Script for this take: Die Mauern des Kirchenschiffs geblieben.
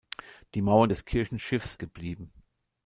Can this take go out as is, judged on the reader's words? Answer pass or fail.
pass